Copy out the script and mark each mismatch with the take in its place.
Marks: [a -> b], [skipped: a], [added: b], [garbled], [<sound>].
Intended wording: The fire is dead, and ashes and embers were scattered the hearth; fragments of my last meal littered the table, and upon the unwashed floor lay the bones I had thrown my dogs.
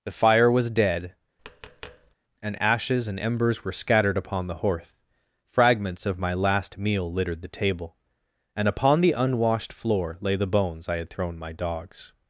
The fire [is -> was] dead, [tap] and ashes and embers were scattered [added: upon] the hearth; fragments of my last meal littered the table, and upon the unwashed floor lay the bones I had thrown my dogs.